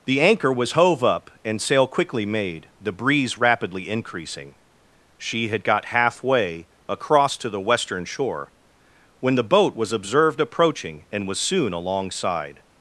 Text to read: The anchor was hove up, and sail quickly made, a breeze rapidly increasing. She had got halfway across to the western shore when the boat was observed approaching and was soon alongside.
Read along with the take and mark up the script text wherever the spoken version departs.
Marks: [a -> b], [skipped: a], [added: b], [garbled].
The anchor was hove up, and sail quickly made, [a -> the] breeze rapidly increasing. She had got halfway across to the western shore when the boat was observed approaching and was soon alongside.